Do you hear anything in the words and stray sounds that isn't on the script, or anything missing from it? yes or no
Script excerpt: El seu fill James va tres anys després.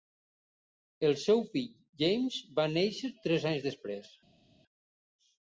yes